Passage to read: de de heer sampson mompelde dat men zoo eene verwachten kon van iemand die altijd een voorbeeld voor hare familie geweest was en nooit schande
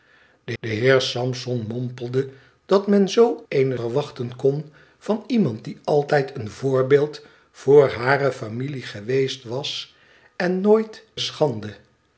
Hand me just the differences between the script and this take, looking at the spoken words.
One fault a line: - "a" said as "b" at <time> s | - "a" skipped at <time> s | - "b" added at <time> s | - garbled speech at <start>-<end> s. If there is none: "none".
none